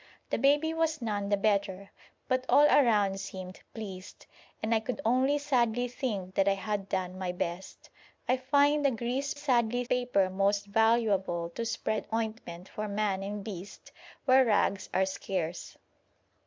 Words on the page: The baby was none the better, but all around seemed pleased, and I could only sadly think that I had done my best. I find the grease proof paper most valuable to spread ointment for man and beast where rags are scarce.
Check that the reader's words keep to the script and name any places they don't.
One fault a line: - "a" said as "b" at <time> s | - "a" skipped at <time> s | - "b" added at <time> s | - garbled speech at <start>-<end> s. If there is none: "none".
- "proof" said as "sadly" at 9.3 s